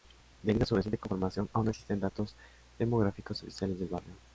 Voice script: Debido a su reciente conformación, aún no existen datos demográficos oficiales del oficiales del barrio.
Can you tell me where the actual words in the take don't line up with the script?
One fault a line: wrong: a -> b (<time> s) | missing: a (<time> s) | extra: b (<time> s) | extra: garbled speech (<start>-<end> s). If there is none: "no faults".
missing: oficiales del (3.9 s)